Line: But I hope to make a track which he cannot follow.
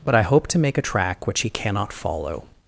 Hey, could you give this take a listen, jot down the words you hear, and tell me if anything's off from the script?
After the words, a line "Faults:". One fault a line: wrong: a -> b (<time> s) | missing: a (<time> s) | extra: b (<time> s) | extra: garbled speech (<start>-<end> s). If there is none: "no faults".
But I hope to make a track which he cannot follow.
Faults:
no faults